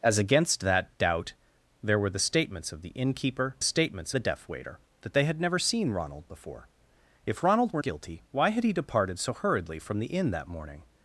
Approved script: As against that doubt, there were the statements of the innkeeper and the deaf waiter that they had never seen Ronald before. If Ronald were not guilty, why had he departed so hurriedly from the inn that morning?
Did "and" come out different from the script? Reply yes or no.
yes